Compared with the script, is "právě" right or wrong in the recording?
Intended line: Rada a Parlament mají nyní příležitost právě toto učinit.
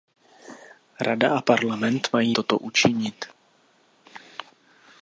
wrong